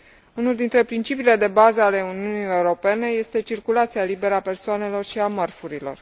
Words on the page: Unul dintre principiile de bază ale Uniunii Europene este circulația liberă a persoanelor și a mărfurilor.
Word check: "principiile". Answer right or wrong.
right